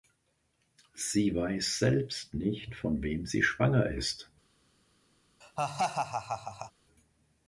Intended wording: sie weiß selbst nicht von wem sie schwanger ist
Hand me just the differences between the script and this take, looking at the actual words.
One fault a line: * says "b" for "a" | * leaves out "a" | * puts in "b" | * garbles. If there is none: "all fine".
all fine